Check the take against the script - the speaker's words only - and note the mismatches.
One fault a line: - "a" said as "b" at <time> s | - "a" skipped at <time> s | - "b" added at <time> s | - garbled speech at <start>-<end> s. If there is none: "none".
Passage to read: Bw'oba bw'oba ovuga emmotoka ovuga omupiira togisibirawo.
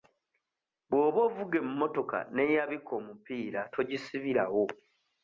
- "bw'oba" skipped at 1.2 s
- "ovuga" said as "n'eyabika" at 2.3 s